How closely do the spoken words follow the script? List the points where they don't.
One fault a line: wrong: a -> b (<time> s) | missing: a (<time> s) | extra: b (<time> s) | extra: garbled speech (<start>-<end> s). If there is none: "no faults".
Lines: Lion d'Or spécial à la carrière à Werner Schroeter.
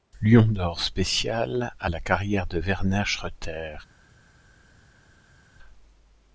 wrong: à -> de (2.5 s)